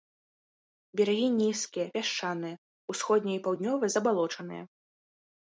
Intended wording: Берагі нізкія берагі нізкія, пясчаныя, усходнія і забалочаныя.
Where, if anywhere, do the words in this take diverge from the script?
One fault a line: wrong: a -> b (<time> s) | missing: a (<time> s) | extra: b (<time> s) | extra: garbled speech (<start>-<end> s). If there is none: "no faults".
missing: берагі нізкія (1.9 s)
extra: паўднёвыя (3.5 s)